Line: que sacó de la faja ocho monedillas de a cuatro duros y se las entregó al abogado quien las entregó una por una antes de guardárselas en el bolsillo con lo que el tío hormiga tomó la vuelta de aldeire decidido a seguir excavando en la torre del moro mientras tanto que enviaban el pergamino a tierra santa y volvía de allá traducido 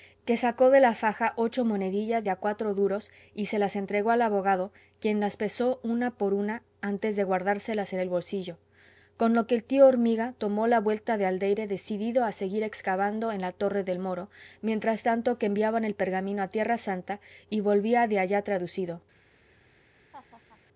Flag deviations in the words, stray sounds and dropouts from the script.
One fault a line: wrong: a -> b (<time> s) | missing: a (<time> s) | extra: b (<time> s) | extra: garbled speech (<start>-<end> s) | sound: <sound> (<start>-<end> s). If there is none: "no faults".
wrong: entregó -> pesó (5.4 s)
sound: laugh (20.1-20.6 s)